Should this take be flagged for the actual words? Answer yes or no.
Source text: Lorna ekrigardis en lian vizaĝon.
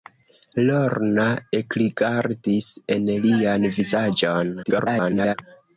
yes